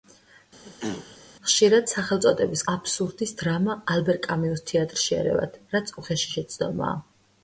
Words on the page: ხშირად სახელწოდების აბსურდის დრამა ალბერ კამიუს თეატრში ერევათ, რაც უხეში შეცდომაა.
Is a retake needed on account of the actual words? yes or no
no